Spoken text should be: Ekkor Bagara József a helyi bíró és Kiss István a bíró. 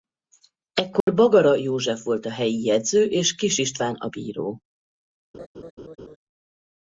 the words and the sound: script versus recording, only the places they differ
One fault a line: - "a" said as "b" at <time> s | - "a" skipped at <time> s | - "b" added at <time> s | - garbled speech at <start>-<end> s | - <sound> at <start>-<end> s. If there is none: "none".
- dropout at 1.0-1.1 s
- "volt" added at 2.0 s
- "bíró" said as "jegyző" at 2.6 s
- laugh at 5.3-6.2 s